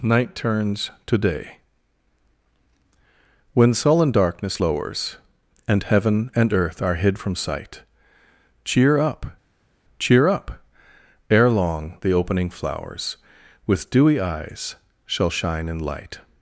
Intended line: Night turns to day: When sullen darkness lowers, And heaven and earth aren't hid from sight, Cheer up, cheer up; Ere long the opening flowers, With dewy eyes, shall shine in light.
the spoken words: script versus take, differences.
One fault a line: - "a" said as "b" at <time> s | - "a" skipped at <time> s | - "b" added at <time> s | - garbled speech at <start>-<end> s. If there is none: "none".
- "aren't" said as "are" at 6.8 s